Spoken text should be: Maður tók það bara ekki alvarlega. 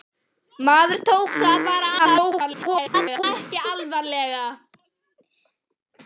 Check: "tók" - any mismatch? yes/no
no